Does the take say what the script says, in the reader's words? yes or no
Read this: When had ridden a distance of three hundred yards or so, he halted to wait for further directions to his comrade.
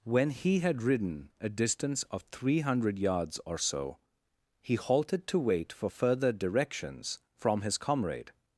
no